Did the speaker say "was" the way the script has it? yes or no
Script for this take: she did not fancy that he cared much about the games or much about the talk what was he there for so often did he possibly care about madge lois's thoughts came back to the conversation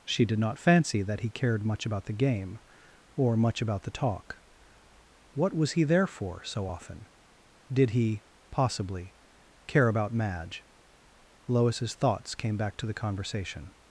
yes